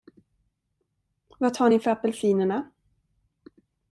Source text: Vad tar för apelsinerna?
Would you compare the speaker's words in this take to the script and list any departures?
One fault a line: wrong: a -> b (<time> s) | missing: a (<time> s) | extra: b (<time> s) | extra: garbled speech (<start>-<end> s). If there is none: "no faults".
extra: ni (1.7 s)